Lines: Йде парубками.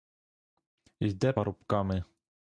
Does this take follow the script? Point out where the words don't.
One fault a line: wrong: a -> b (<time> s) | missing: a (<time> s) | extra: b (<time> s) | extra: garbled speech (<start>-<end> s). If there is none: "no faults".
no faults